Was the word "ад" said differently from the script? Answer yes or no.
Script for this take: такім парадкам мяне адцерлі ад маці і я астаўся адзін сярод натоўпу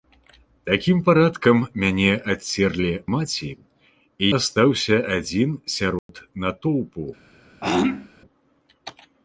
yes